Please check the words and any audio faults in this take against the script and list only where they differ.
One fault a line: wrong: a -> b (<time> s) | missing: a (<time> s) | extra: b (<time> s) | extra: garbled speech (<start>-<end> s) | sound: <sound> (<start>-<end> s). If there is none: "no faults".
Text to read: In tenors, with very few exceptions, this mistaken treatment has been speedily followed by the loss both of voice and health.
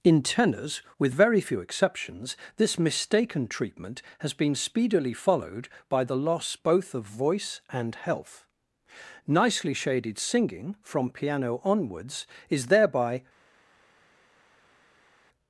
extra: Nicely shaded singing from piano onwards is thereby (9.3 s)